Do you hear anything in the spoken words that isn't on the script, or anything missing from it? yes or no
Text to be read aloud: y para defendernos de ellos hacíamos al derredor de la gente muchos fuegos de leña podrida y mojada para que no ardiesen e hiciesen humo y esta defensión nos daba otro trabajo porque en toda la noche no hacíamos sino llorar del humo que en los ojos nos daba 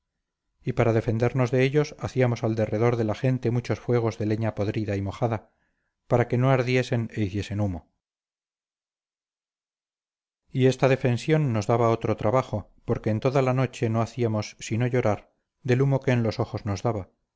no